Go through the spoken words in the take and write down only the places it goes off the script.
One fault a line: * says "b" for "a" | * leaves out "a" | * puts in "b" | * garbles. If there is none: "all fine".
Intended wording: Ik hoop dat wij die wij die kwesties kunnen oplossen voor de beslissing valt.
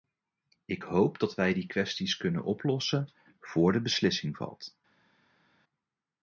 * leaves out "wij die"